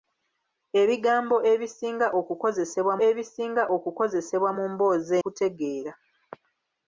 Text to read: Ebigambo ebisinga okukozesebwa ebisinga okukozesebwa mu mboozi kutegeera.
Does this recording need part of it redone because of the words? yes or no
no